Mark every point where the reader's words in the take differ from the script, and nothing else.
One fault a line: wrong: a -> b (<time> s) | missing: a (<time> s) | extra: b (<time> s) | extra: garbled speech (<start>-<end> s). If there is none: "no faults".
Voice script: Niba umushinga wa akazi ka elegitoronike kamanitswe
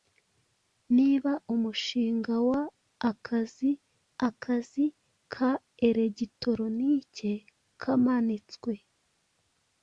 extra: akazi (4.3 s)